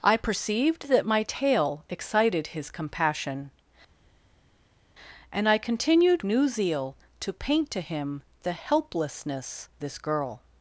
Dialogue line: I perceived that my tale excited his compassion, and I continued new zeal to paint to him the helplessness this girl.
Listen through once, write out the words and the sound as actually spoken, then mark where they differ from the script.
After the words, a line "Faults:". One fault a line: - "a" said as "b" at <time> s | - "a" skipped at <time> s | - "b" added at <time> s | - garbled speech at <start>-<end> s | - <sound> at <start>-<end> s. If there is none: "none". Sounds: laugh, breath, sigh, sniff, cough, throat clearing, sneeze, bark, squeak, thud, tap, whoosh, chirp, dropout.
I perceived that my tale excited his compassion, and I continued new zeal to paint to him the helplessness this girl.
Faults:
none